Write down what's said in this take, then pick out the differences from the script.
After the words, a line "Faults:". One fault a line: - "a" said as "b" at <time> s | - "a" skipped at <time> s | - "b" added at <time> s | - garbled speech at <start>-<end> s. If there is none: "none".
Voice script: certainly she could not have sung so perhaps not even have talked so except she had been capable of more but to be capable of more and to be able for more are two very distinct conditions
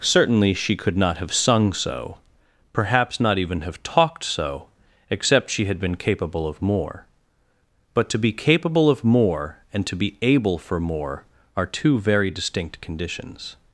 certainly she could not have sung so perhaps not even have talked so except she had been capable of more but to be capable of more and to be able for more are two very distinct conditions
Faults:
none